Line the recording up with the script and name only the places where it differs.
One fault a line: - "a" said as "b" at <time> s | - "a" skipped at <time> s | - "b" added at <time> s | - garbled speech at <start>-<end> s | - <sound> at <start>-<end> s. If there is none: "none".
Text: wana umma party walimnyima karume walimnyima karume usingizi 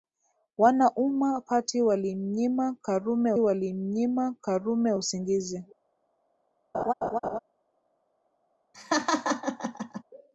- laugh at 6.7-7.4 s
- laugh at 8.7-10.0 s